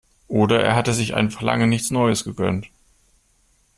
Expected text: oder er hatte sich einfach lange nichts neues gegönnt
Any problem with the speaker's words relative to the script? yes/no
no